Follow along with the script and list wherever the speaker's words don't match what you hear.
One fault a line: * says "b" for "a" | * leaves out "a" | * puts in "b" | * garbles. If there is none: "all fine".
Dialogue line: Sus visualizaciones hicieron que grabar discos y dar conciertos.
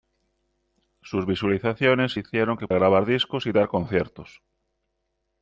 all fine